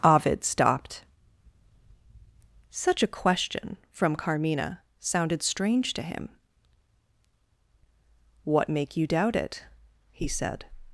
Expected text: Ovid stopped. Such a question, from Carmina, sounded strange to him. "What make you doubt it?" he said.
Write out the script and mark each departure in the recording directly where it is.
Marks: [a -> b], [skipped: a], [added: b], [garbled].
Ovid stopped. Such a question, from Carmina, sounded strange to him. "What make you doubt it?" he said.